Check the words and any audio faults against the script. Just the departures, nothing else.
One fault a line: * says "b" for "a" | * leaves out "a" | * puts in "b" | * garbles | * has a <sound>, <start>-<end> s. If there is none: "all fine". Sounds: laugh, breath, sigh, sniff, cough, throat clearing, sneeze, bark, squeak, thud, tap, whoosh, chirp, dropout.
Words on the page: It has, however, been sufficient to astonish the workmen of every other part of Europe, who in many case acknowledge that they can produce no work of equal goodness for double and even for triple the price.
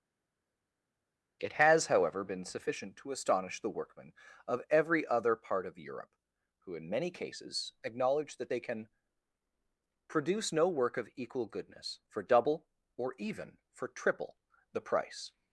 * says "cases" for "case"
* says "or" for "and"